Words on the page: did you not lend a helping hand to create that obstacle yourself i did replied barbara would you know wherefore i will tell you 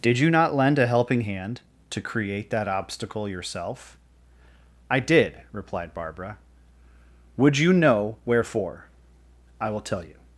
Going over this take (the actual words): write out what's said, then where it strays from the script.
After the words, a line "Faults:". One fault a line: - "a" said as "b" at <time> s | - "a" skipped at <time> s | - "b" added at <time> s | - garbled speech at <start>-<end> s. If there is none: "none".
did you not lend a helping hand to create that obstacle yourself i did replied barbara would you know wherefore i will tell you
Faults:
none